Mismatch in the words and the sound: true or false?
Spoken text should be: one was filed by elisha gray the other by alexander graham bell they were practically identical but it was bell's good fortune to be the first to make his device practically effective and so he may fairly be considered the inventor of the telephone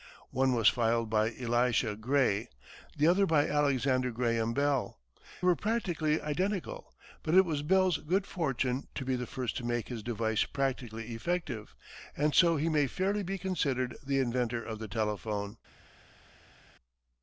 true